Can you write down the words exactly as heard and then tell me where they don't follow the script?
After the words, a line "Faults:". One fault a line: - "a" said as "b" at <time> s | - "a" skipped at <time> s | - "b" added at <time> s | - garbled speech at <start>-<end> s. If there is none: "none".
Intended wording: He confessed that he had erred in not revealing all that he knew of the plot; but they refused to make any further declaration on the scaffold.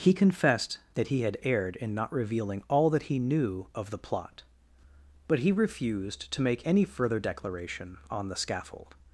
He confessed that he had erred in not revealing all that he knew of the plot; but he refused to make any further declaration on the scaffold.
Faults:
- "they" said as "he" at 5.4 s